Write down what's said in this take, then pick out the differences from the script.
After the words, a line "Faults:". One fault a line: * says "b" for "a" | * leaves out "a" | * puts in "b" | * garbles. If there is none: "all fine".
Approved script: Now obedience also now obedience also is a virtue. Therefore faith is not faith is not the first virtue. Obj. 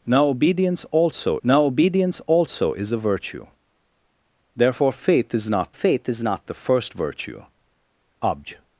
Now obedience also now obedience also is a virtue. Therefore faith is not faith is not the first virtue. Obj.
Faults:
all fine